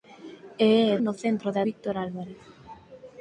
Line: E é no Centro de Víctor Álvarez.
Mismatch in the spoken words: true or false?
false